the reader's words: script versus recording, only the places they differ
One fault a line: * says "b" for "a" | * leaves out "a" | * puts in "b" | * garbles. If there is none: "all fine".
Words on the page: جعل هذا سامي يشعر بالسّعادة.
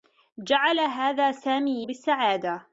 * leaves out "يشعر"